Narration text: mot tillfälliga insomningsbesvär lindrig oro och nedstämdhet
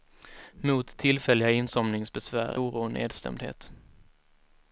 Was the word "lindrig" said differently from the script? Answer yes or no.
yes